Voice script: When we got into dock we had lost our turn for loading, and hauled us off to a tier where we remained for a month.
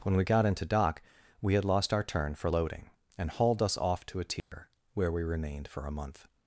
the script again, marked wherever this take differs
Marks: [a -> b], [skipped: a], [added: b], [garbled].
When we got into dock we had lost our turn for loading, and hauled us off to a tier where we remained for a month.